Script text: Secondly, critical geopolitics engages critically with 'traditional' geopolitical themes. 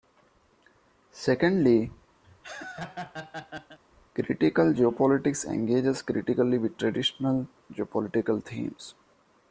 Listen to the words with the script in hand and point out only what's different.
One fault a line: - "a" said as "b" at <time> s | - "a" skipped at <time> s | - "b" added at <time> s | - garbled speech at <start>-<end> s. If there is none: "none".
none